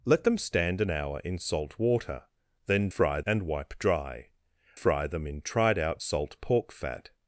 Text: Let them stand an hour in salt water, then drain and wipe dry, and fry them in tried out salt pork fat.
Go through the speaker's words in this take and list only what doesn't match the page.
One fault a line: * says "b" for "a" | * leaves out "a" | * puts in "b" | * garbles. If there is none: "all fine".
* says "fry" for "drain"
* leaves out "and"